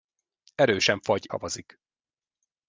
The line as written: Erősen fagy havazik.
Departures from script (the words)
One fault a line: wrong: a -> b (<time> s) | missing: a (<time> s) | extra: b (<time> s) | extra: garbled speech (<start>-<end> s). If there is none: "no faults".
no faults